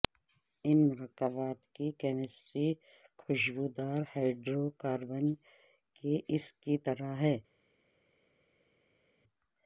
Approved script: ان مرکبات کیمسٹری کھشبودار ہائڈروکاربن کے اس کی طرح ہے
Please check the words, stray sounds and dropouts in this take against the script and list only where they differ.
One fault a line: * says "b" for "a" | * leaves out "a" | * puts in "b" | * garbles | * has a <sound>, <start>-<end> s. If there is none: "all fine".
* puts in "کی"